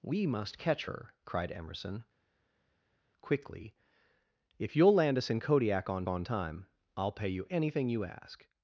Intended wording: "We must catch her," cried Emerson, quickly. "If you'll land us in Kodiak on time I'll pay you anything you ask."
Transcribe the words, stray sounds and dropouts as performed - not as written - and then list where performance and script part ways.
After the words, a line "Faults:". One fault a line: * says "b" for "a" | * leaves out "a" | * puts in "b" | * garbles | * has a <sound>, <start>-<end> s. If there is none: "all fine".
"We must catch her," cried Emerson, quickly. "If you'll land us in Kodiak on on time I'll pay you anything you ask."
Faults:
* puts in "on"